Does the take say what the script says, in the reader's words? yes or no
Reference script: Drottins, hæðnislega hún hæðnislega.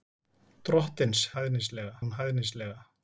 yes